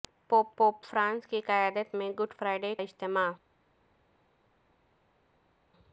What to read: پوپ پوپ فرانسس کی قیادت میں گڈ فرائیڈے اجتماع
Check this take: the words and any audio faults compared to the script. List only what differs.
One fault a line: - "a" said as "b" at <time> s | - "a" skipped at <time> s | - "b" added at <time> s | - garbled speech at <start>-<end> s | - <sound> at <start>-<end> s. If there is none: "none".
none